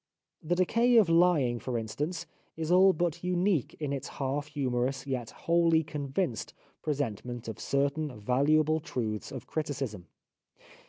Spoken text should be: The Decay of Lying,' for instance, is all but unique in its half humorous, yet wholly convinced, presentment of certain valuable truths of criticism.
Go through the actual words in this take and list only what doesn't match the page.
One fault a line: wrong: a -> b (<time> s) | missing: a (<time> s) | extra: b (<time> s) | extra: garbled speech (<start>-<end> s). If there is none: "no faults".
no faults